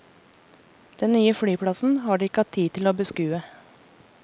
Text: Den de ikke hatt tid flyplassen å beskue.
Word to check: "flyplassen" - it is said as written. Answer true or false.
false